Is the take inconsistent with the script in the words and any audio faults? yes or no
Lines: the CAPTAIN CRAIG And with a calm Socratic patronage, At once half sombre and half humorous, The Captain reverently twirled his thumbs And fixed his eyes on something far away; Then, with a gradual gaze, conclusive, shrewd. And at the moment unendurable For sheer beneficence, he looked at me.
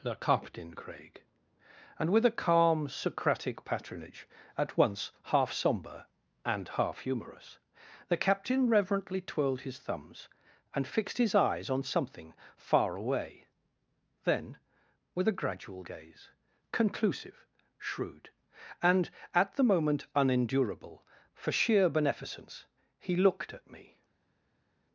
no